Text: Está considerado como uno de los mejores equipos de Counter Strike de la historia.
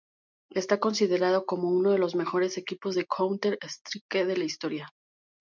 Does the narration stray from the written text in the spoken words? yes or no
no